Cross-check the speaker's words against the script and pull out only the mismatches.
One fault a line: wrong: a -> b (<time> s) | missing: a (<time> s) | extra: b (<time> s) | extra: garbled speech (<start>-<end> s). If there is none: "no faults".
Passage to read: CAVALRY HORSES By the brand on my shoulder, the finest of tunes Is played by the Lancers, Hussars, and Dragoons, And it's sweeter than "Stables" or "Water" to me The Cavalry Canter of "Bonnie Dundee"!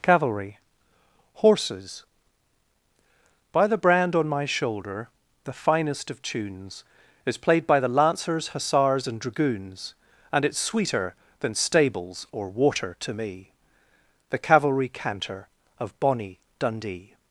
no faults